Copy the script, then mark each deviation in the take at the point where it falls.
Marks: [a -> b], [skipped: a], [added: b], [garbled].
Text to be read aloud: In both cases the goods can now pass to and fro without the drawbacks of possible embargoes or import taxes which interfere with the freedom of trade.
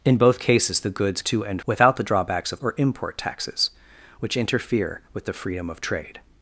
In both cases the goods [skipped: can now pass] to and [skipped: fro] without the drawbacks of [skipped: possible embargoes] or import taxes which interfere with the freedom of trade.